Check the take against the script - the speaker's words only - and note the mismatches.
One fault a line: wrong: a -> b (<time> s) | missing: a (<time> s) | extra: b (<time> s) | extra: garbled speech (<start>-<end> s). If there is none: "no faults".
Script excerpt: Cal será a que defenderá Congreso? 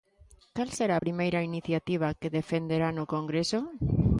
extra: primeira iniciativa (1.0 s)
extra: no (2.9 s)